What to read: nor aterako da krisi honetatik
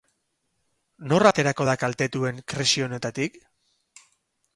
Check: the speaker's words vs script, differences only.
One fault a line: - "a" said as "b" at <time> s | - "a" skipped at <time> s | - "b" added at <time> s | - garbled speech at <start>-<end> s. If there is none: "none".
- "kaltetuen" added at 1.8 s